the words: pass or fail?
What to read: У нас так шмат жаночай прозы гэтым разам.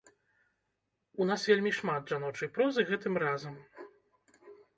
fail